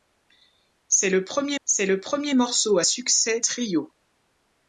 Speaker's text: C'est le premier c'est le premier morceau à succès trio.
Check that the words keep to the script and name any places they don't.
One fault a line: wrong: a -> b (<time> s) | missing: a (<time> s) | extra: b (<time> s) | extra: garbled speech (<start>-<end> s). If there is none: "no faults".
no faults